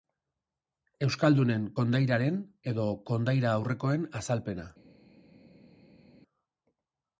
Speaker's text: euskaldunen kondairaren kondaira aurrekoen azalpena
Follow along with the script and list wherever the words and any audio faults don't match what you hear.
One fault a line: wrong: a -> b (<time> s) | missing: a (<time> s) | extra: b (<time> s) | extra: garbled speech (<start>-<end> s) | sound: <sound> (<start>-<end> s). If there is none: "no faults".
extra: edo (2.7 s)